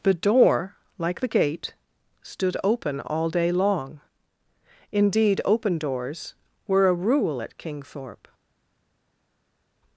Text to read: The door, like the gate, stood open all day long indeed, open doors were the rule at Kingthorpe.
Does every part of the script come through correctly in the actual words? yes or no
no